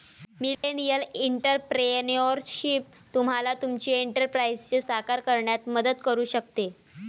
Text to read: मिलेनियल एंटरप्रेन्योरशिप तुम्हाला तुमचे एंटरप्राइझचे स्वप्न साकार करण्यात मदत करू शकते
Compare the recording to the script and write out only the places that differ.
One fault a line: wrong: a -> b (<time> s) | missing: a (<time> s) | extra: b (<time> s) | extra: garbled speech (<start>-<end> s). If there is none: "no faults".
missing: स्वप्न (4.8 s)